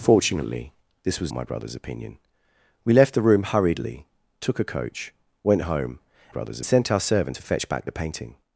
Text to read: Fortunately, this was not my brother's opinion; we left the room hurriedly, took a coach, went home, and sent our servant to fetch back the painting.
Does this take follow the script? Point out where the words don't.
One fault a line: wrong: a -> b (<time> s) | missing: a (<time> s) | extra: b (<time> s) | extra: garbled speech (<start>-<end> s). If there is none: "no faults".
missing: not (1.3 s)
wrong: and -> brother's (6.3 s)